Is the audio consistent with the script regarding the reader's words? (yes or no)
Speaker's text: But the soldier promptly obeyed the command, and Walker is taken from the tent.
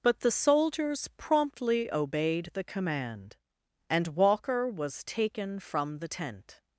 no